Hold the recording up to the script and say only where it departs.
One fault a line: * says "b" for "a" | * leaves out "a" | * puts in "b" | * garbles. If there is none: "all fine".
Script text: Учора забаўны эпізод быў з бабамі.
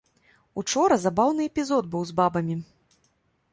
all fine